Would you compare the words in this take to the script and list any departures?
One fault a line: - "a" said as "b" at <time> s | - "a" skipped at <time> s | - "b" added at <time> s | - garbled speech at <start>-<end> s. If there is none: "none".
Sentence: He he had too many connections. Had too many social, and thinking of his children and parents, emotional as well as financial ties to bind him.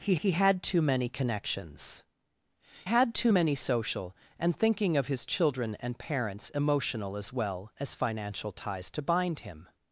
none